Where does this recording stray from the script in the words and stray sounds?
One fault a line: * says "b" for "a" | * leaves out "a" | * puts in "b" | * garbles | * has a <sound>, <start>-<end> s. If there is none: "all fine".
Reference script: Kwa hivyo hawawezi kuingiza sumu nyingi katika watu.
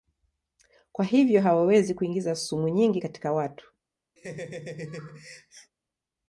* has a laugh, 4.2-5.7 s